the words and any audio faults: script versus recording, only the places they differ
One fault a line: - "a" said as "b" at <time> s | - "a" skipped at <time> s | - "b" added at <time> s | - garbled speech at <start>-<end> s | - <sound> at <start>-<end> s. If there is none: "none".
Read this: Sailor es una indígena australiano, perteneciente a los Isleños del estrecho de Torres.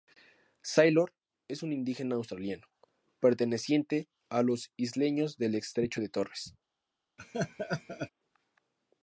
- "una" said as "un" at 1.6 s
- laugh at 7.2-8.1 s